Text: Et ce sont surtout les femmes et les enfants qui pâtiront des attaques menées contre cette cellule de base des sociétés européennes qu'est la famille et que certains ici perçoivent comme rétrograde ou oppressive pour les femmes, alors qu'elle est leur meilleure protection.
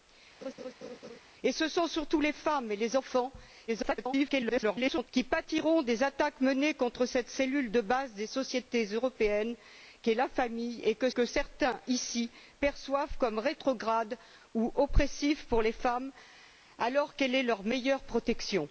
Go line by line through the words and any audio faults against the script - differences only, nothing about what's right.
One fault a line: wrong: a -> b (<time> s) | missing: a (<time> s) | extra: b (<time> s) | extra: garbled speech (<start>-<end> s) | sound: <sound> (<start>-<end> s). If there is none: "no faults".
sound: laugh (0.4-1.2 s)
extra: garbled speech (3.7-5.1 s)
extra: que (11.1 s)